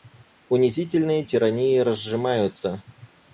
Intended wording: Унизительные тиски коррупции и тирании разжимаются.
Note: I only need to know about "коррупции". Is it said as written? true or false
false